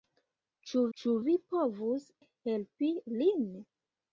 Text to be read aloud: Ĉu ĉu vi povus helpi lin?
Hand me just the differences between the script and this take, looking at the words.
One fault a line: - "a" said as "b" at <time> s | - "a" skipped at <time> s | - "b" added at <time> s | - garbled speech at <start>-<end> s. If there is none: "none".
none